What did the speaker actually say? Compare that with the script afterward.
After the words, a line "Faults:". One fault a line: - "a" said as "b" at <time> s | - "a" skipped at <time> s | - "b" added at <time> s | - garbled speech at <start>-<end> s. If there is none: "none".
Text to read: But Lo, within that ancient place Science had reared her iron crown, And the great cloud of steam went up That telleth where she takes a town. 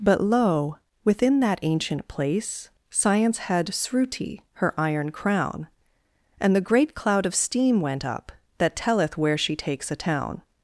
But Lo, within that ancient place Science had sruti her iron crown, And the great cloud of steam went up That telleth where she takes a town.
Faults:
- "reared" said as "sruti" at 3.7 s